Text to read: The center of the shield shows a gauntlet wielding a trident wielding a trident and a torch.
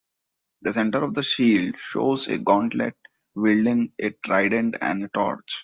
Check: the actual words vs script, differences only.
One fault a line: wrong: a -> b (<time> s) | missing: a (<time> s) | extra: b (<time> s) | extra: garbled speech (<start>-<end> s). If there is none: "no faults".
missing: wielding a trident (4.8 s)